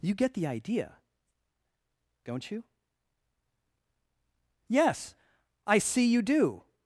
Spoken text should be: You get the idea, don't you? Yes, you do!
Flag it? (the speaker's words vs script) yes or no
yes